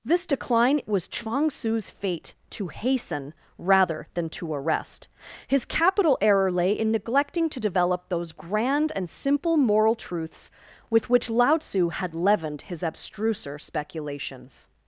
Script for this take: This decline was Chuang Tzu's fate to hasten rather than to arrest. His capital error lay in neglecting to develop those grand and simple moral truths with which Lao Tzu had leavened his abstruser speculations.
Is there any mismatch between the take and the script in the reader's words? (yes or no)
no